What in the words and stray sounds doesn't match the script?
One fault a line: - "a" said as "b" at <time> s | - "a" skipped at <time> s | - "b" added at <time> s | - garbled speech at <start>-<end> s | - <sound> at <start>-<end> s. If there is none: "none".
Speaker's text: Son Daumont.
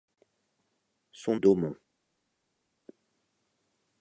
none